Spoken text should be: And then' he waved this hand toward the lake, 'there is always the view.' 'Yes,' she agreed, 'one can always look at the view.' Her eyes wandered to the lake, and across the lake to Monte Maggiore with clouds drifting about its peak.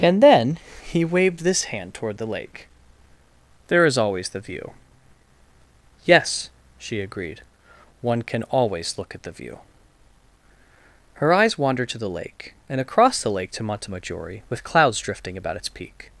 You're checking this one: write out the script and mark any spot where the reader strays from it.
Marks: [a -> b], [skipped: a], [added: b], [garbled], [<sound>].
And then' he waved this hand toward the lake, 'there is always the view.' 'Yes,' she agreed, 'one can always look at the view.' Her eyes wandered to the lake, and across the lake to Monte Maggiore with clouds drifting about its peak.